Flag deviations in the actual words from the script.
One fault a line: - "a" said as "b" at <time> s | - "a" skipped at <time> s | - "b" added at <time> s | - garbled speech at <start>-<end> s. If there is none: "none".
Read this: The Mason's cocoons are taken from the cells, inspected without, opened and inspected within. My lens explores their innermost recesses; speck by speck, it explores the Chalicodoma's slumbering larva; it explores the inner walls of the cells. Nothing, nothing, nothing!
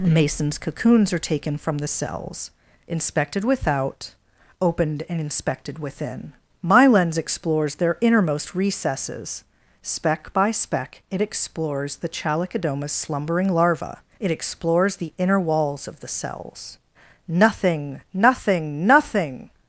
- "The" skipped at 0.0 s